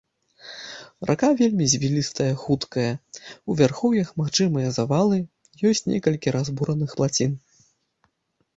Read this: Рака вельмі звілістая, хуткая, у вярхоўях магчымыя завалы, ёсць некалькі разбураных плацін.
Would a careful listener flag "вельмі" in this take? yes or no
no